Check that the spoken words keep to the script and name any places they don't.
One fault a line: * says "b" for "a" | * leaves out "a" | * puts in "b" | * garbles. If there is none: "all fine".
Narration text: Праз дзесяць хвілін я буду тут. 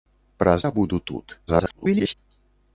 * leaves out "дзесяць хвілін"
* garbles